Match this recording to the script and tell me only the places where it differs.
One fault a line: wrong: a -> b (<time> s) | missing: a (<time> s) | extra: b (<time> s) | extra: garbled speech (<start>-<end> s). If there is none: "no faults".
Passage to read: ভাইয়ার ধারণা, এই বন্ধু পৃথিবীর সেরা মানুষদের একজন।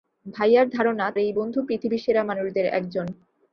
no faults